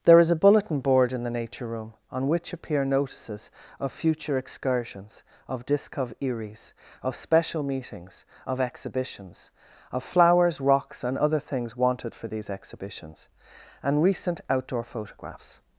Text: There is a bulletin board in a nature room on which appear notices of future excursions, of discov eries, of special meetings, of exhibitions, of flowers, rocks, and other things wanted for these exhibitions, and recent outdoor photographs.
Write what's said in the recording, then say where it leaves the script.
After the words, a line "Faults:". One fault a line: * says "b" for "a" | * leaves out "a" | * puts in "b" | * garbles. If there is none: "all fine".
There is a bulletin board in the nature room on which appear notices of future excursions, of discov eries, of special meetings, of exhibitions, of flowers, rocks, and other things wanted for these exhibitions, and recent outdoor photographs.
Faults:
* says "the" for "a"